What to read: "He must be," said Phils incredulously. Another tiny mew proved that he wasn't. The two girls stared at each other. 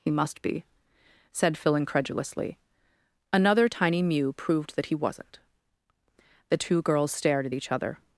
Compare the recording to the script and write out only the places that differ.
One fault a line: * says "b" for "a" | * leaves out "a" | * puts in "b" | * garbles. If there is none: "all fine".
* says "Phil" for "Phils"